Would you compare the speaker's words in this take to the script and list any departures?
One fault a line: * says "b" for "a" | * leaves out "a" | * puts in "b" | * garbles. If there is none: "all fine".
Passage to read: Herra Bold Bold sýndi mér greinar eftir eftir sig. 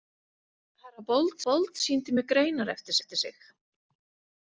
all fine